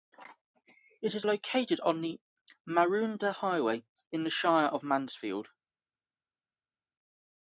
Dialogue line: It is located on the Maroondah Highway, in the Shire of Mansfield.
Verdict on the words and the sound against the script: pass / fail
pass